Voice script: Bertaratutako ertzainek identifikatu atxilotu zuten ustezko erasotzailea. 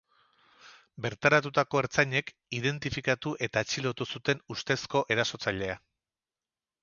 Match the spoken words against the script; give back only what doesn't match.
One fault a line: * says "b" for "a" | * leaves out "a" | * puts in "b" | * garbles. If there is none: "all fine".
* puts in "eta"